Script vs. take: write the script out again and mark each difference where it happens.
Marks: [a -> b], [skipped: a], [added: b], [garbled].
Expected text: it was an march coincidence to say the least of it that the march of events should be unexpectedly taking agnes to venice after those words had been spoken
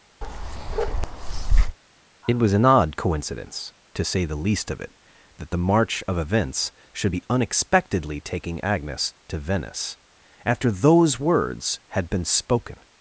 it was an [march -> odd] coincidence to say the least of it that the march of events should be unexpectedly taking agnes to venice after those words had been spoken